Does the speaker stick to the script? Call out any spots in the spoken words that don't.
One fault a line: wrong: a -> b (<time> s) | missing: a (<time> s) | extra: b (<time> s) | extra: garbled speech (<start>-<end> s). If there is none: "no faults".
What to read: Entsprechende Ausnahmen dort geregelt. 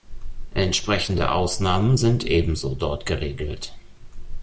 extra: sind ebenso (1.9 s)